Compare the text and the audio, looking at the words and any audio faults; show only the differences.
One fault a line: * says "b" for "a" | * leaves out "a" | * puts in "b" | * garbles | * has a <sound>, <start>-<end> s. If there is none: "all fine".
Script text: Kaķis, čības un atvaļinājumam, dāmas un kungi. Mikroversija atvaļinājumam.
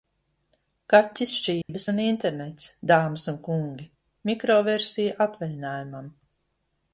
* has a dropout, 1.6-1.7 s
* says "internets" for "atvaļinājumam"